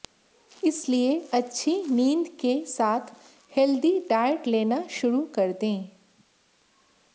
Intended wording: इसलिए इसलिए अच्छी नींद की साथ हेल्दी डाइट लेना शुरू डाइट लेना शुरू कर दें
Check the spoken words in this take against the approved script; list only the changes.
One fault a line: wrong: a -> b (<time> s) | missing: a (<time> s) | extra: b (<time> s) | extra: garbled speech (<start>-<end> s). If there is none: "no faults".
missing: इसलिए (1.2 s)
wrong: की -> के (2.4 s)
missing: डाइट लेना शुरू (5.2 s)